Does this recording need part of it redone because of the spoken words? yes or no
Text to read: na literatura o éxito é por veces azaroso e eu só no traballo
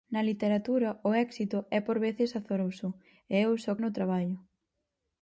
no